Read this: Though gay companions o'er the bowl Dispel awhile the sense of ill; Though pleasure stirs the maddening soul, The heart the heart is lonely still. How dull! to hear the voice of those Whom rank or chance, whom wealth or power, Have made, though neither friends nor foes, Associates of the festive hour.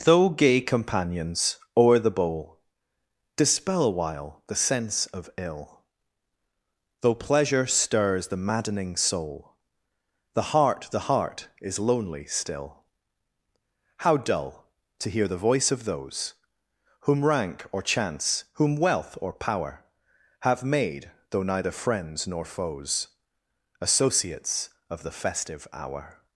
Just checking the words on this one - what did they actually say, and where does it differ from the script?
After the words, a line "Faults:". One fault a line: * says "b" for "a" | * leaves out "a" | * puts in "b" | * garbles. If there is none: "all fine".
Though gay companions o'er the bowl Dispel awhile the sense of ill; Though pleasure stirs the maddening soul, The heart the heart is lonely still. How dull! to hear the voice of those Whom rank or chance, whom wealth or power, Have made, though neither friends nor foes, Associates of the festive hour.
Faults:
all fine